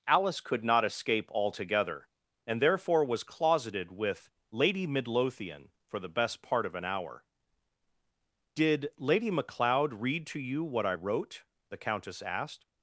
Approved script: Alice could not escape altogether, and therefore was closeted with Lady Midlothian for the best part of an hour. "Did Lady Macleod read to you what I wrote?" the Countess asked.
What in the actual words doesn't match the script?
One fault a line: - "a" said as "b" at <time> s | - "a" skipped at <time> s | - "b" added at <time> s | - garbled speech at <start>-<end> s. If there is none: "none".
none